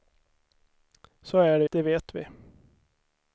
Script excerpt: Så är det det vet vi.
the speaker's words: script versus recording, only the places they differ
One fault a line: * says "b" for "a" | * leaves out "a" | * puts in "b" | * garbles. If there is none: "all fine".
all fine